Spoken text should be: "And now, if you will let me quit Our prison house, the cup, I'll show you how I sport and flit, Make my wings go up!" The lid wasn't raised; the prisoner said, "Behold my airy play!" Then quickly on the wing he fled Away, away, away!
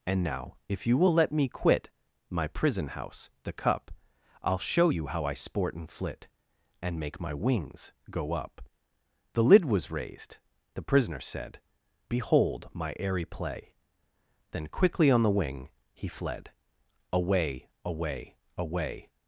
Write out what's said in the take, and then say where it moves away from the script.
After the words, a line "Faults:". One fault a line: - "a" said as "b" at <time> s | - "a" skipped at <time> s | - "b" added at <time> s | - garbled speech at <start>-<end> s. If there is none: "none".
"And now, if you will let me quit My prison house, the cup, I'll show you how I sport and flit, And make my wings go up!" The lid was raised; the prisoner said, "Behold my airy play!" Then quickly on the wing he fled Away, away, away!
Faults:
- "Our" said as "My" at 2.3 s
- "And" added at 6.8 s
- "wasn't" said as "was" at 9.6 s